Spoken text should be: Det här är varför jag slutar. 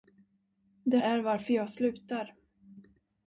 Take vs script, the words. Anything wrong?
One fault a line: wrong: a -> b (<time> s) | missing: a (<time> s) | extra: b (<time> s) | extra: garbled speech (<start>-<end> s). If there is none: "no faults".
missing: här (1.0 s)